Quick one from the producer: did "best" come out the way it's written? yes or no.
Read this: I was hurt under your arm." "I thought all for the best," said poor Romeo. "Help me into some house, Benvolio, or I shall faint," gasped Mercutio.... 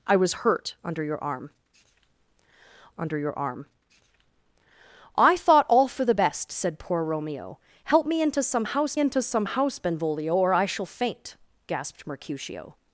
yes